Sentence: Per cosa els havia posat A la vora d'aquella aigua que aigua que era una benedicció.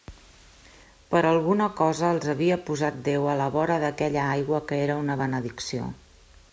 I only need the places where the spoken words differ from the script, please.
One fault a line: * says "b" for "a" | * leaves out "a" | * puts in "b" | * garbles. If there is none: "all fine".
* puts in "alguna"
* puts in "Déu"
* leaves out "aigua que"